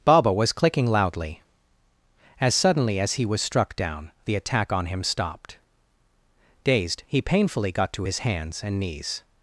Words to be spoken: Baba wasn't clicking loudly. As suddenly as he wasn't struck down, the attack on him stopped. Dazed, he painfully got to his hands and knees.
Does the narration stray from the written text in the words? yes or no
yes